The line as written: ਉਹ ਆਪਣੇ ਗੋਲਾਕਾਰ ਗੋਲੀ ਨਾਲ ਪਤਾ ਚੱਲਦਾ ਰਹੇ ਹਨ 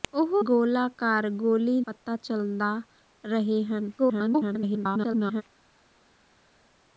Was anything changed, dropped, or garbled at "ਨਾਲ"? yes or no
yes